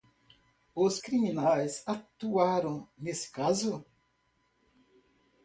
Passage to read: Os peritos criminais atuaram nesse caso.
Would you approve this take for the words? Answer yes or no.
no